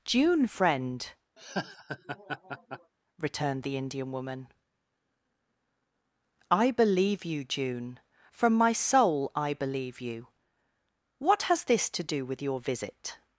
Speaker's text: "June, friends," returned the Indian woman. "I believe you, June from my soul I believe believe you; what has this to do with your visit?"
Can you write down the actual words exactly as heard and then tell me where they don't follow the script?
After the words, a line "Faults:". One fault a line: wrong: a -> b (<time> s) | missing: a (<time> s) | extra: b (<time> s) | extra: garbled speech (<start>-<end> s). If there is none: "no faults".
"June, friend," returned the Indian woman. "I believe you, June from my soul I believe you; what has this to do with your visit?"
Faults:
wrong: friends -> friend (0.5 s)
missing: believe (10.0 s)